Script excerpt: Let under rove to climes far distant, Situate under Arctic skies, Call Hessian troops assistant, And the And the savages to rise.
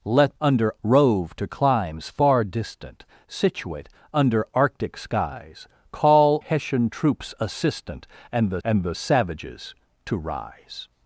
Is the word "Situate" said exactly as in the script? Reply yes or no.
yes